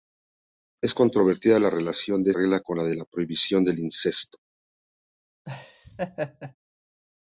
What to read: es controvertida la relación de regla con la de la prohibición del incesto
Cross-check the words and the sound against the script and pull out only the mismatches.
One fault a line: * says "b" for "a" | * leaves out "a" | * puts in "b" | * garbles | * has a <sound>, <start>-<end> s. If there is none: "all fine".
* has a laugh, 5.5-6.6 s